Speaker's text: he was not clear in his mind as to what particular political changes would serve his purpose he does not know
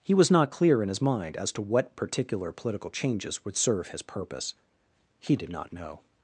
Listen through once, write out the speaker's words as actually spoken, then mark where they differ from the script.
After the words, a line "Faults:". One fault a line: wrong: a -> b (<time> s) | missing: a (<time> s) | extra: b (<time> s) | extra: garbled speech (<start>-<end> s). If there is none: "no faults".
he was not clear in his mind as to what particular political changes would serve his purpose he did not know
Faults:
wrong: does -> did (5.4 s)